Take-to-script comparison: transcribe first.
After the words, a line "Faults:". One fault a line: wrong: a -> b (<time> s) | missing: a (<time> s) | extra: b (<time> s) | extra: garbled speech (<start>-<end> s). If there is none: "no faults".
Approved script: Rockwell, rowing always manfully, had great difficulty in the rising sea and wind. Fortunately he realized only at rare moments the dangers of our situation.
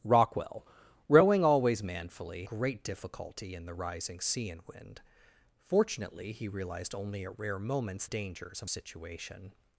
Rockwell, rowing always manfully, great difficulty in the rising sea and wind. Fortunately he realized only at rare moments dangers of situation.
Faults:
missing: had (2.5 s)
missing: the (8.1 s)
missing: our (8.7 s)